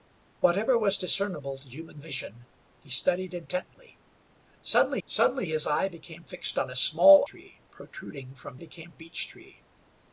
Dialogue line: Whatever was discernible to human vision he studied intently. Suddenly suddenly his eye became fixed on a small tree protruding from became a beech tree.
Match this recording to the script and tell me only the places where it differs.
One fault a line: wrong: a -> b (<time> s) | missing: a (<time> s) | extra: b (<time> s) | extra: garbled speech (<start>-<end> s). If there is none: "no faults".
no faults